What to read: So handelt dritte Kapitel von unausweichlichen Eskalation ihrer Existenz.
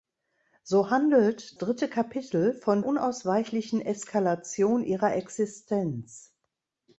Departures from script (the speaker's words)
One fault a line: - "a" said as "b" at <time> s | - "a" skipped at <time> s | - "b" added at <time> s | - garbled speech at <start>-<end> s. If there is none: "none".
none